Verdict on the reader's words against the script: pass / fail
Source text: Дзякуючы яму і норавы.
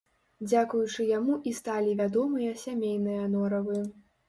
fail